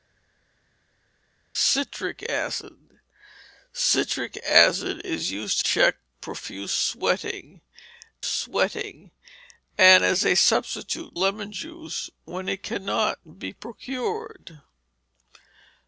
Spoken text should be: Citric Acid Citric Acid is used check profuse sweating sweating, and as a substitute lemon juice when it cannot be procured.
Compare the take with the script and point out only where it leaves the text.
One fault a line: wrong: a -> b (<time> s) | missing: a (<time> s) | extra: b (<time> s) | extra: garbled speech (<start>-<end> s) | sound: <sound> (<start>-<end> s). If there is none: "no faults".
no faults